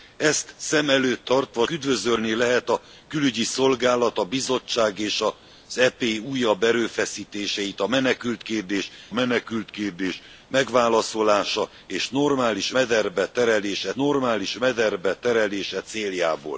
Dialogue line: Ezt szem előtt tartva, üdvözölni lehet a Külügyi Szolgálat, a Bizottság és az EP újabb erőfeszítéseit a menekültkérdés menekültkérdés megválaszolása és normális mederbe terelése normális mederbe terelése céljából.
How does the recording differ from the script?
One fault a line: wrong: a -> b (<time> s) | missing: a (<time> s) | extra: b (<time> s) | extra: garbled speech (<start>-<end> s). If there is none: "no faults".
no faults